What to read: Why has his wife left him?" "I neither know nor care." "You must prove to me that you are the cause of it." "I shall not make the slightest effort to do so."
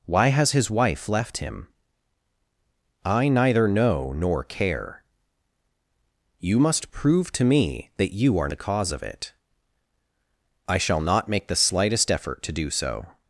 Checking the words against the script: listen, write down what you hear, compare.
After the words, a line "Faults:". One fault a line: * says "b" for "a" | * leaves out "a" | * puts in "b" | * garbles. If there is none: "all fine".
Why has his wife left him?" "I neither know nor care." "You must prove to me that you are the cause of it." "I shall not make the slightest effort to do so."
Faults:
all fine